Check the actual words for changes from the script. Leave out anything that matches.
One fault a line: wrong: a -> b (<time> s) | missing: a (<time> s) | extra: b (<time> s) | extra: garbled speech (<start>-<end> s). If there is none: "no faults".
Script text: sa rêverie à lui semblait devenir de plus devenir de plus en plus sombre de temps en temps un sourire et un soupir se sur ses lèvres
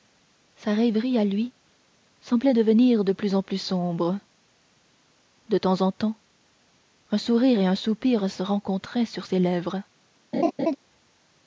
missing: devenir de plus (3.4 s)
extra: rencontraient (8.4 s)